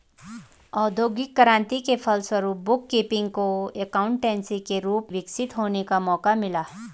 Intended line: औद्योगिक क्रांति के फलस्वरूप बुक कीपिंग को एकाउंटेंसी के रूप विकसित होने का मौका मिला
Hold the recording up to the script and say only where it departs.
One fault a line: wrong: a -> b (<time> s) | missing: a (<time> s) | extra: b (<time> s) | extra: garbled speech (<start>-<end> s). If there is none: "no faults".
no faults